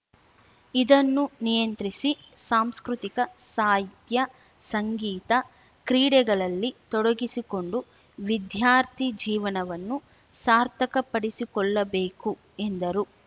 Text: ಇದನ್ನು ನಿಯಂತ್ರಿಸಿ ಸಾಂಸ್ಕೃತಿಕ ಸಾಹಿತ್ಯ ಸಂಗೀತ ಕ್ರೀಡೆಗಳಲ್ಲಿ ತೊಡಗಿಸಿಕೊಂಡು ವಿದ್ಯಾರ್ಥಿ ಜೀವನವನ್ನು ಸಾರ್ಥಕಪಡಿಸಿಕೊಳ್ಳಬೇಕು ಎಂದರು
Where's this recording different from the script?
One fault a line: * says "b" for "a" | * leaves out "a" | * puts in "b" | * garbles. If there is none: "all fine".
all fine